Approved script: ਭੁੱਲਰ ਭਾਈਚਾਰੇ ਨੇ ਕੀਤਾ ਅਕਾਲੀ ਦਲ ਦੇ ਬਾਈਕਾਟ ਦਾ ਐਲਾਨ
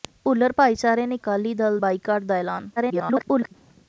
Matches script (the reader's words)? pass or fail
fail